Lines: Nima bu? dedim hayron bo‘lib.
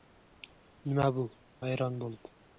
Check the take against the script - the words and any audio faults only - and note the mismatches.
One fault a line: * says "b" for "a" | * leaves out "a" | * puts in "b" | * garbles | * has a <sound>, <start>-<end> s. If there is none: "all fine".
* leaves out "dedim"